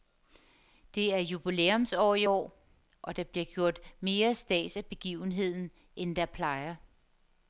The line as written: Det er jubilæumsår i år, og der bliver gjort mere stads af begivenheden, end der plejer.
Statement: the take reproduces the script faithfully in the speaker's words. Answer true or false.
true